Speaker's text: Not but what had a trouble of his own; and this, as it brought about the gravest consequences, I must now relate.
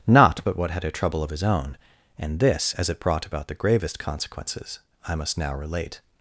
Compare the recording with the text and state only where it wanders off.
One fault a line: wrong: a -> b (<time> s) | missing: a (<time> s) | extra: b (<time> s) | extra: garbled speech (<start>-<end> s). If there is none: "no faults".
no faults